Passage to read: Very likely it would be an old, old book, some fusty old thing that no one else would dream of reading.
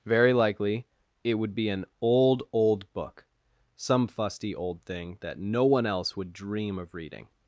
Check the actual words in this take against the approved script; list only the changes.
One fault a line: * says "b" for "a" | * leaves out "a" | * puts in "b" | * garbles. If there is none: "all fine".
all fine